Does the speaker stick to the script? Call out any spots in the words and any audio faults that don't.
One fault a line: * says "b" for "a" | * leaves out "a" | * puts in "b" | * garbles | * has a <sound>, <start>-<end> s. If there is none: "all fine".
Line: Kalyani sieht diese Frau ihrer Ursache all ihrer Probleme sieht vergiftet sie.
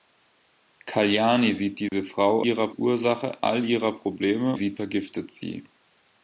* has a dropout, 1.9-1.9 s